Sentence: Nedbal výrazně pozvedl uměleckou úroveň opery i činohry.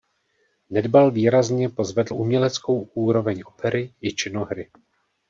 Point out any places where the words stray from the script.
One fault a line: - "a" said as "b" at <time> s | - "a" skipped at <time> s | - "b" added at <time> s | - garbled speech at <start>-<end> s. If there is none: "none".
none